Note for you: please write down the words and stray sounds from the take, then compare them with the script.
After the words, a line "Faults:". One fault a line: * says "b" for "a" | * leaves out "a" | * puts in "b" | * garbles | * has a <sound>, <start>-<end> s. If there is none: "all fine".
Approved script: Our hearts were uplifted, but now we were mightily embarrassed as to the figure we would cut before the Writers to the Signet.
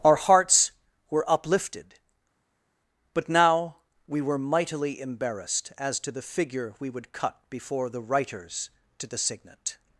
Our hearts were uplifted, but now we were mightily embarrassed as to the figure we would cut before the Writers to the Signet.
Faults:
all fine